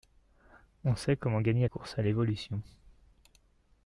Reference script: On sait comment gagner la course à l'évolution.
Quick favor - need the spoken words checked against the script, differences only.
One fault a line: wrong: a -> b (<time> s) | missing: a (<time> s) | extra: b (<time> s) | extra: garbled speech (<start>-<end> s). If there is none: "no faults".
missing: la (1.7 s)